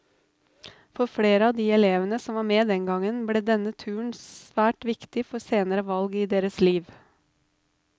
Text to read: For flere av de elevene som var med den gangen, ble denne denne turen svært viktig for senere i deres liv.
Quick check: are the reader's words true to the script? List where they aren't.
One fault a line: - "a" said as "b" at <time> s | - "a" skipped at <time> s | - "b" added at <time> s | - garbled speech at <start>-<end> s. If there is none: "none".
- "denne" skipped at 3.8 s
- "valg" added at 6.0 s